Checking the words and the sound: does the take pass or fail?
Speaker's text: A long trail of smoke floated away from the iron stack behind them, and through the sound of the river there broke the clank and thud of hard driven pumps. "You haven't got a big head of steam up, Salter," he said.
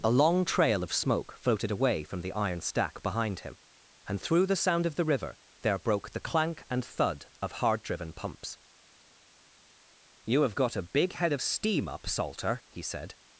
fail